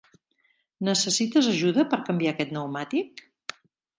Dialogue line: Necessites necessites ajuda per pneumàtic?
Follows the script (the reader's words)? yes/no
no